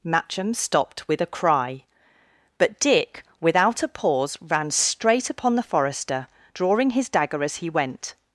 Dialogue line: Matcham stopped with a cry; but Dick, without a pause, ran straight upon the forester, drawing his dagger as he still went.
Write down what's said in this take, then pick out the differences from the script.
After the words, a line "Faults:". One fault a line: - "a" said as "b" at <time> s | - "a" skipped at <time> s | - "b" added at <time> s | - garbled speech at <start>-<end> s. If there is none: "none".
Matcham stopped with a cry; but Dick, without a pause, ran straight upon the forester, drawing his dagger as he went.
Faults:
- "still" skipped at 7.7 s